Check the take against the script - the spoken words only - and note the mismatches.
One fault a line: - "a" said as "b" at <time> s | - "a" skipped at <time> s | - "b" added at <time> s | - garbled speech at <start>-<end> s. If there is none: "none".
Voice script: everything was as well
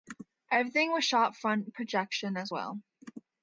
- "shot front projection" added at 1.1 s